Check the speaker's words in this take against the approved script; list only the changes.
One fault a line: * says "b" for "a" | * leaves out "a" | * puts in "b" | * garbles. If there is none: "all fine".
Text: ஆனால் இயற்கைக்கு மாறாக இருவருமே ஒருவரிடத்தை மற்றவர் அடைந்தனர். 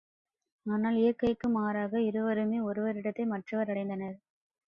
all fine